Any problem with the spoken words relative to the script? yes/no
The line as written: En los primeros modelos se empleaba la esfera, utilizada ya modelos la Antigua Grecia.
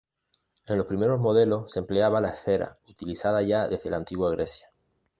yes